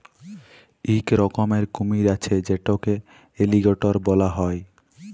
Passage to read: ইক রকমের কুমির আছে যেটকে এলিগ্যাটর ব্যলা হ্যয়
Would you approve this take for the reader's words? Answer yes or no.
yes